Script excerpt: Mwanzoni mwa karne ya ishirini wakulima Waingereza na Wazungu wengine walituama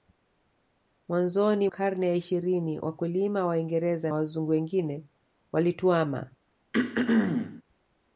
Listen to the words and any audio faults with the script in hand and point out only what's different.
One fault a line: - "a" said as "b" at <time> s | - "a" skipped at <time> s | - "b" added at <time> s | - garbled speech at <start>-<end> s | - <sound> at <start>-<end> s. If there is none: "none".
- "mwa" skipped at 1.7 s
- "na" skipped at 4.1 s
- throat clearing at 6.7-7.6 s